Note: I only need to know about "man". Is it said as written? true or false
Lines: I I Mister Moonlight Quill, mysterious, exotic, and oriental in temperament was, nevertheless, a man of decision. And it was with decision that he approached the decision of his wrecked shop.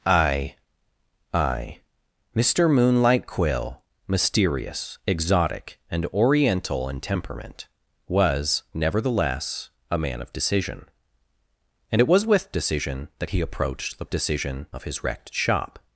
true